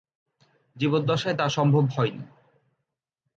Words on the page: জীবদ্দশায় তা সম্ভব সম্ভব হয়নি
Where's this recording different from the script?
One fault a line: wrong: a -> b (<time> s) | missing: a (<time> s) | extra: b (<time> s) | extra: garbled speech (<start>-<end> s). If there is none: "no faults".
missing: সম্ভব (1.8 s)